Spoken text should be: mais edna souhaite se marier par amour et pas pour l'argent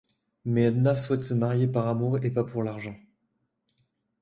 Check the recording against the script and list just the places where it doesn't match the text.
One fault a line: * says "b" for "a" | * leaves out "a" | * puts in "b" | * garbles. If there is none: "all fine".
all fine